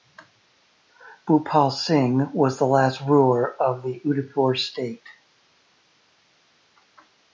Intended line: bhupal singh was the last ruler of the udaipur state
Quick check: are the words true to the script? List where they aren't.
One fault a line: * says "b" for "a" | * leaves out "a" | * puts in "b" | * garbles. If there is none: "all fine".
all fine